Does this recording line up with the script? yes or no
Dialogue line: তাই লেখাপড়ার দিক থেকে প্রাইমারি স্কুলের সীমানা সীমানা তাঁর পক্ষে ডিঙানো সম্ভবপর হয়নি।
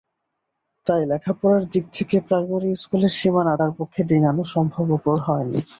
no